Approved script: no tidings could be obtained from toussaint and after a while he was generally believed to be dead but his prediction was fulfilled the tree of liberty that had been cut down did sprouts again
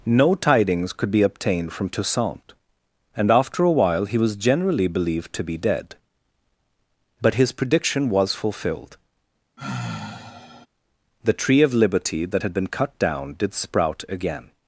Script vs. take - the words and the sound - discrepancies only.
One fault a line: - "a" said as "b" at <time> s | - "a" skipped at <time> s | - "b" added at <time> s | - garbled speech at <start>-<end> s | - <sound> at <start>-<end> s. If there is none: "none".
- sigh at 9.6-10.7 s
- "sprouts" said as "sprout" at 13.5 s